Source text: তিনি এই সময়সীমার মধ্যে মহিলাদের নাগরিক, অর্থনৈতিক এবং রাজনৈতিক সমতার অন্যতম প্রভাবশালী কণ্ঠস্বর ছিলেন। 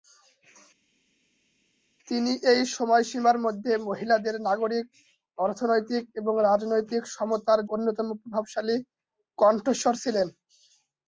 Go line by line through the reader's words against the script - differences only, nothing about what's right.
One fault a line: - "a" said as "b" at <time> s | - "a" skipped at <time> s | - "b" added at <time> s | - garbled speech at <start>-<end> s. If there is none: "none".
none